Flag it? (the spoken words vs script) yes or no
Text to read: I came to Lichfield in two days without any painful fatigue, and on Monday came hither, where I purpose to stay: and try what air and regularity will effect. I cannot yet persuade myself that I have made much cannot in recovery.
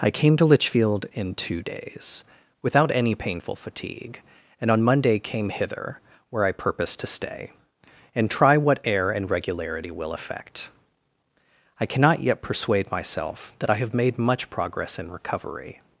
yes